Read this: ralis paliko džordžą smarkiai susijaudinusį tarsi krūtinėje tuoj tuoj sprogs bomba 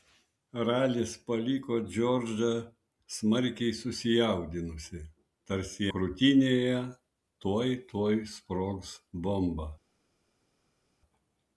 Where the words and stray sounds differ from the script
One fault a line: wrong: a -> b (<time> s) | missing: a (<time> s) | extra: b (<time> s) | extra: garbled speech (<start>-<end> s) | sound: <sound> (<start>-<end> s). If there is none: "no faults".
no faults